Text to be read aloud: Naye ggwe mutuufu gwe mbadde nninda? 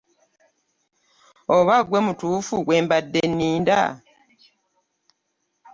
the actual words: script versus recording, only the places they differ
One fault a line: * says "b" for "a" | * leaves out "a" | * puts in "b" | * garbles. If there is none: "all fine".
* says "Oba" for "Naye"